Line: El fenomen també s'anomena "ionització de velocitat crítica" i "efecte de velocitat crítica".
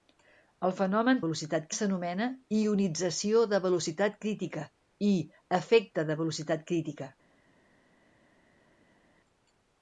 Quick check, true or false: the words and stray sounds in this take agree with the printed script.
false